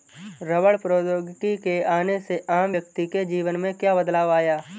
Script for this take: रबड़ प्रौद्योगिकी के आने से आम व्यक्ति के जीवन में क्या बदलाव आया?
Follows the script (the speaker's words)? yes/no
yes